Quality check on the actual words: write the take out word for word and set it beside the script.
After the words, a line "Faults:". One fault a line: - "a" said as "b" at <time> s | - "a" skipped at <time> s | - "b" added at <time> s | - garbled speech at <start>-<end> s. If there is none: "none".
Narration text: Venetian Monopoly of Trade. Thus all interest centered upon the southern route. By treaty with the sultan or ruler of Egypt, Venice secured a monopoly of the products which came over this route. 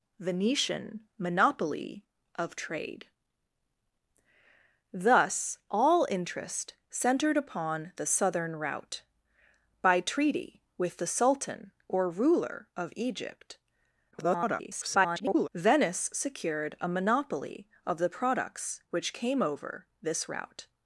Venetian Monopoly of Trade. Thus all interest centered upon the southern route. By treaty with the sultan or ruler of Egypt, [garbled] Venice secured a monopoly of the products which came over this route.
Faults:
- garbled speech at 14.1-15.5 s